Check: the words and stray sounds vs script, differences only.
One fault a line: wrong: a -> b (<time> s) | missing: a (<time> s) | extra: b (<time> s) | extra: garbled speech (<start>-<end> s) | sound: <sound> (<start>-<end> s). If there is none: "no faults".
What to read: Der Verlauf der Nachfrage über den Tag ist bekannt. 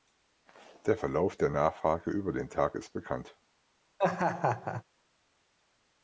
sound: laugh (4.0-4.8 s)